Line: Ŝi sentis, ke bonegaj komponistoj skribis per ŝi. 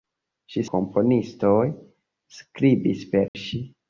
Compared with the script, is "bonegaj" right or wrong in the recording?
wrong